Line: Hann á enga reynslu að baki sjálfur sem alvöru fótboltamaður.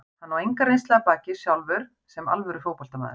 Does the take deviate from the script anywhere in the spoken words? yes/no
no